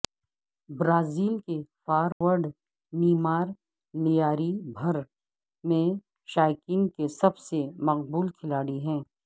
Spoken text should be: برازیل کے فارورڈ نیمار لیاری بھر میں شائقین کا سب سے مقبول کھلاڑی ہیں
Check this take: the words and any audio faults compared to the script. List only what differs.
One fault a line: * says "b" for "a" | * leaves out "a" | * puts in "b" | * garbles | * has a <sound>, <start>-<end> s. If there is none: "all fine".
* has a dropout, 2.1-2.2 s
* says "کے" for "کا"